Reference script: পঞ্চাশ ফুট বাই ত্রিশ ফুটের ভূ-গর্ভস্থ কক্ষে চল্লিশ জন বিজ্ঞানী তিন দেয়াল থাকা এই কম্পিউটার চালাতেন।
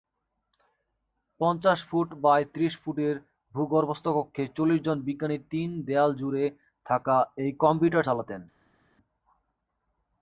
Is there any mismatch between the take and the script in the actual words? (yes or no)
yes